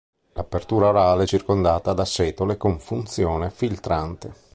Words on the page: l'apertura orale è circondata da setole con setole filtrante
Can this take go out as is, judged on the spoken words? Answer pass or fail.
fail